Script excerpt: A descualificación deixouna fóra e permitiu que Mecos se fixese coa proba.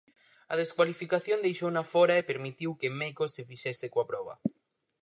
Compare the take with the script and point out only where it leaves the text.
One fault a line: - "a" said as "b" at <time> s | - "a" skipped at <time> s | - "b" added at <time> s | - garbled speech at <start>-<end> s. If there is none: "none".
none